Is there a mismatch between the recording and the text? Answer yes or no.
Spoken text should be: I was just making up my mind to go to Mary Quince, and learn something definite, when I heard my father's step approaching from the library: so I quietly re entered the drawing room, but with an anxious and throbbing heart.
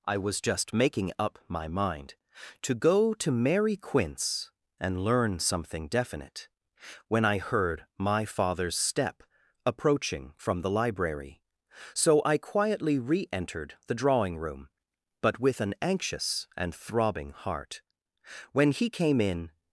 yes